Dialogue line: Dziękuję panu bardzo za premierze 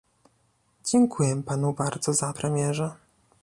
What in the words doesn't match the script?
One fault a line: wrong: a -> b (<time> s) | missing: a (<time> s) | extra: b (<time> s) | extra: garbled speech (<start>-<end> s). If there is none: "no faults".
no faults